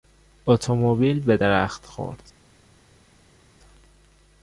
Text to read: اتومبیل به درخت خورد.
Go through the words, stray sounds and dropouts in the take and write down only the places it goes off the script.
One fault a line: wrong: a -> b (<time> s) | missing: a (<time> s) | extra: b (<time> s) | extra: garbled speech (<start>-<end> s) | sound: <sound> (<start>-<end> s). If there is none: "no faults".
no faults